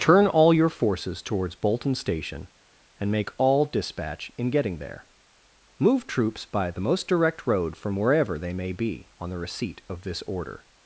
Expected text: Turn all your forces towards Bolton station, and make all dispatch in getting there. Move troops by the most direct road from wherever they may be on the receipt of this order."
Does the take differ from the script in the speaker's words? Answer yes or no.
no